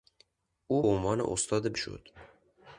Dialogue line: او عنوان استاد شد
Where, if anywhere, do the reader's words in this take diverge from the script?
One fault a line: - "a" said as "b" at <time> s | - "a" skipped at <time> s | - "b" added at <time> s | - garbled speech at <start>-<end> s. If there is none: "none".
none